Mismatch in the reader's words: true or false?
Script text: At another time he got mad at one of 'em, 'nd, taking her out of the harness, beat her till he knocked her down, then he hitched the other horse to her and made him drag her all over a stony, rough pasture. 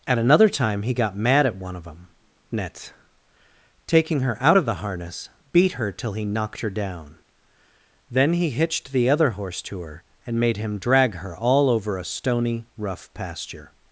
true